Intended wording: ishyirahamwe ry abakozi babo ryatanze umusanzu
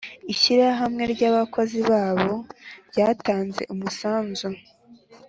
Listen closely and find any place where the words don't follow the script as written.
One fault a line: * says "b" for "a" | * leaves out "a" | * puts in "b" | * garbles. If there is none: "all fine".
all fine